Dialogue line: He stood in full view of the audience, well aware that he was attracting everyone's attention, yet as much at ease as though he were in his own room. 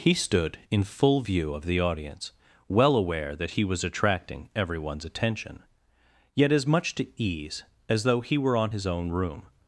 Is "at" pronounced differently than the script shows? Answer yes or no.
yes